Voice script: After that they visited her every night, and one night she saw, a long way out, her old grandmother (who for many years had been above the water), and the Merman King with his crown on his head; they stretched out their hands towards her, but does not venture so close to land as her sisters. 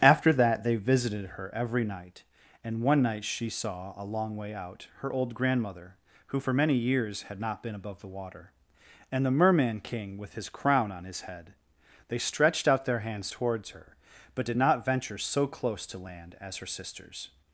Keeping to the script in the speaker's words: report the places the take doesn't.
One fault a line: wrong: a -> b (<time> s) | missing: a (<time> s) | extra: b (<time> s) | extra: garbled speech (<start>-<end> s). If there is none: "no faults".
extra: not (7.4 s)
wrong: does -> did (14.4 s)